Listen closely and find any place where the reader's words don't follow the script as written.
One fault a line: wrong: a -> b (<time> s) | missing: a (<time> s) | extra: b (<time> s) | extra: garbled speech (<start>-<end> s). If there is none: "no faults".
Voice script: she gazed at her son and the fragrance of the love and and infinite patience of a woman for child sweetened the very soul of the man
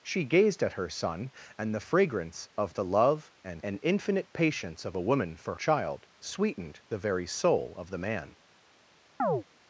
no faults